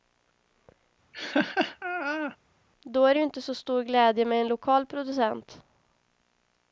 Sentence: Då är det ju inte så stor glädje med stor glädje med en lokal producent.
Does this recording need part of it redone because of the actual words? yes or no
yes